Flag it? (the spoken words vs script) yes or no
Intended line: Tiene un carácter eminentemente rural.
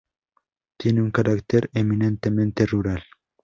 no